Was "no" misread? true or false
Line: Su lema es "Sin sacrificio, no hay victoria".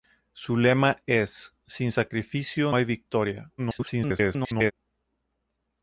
true